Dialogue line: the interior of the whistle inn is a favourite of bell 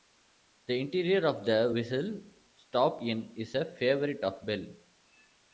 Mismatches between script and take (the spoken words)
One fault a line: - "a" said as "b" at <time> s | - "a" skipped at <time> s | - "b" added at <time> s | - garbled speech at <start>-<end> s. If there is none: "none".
- "stop" added at 2.5 s